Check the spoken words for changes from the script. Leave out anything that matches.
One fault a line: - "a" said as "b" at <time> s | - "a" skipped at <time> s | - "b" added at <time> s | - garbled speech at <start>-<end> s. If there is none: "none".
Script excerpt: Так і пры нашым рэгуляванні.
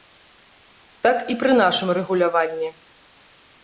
none